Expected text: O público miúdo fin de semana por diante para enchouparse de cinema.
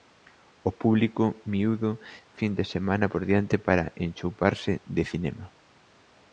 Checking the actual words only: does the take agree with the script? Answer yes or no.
yes